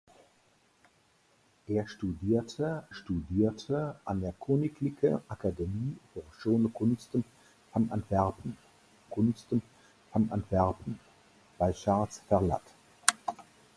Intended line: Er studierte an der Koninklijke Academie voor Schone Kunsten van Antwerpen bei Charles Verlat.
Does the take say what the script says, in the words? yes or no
no